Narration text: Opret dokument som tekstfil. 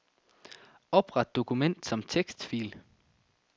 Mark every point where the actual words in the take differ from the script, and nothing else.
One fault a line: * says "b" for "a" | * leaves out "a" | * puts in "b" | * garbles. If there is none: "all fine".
all fine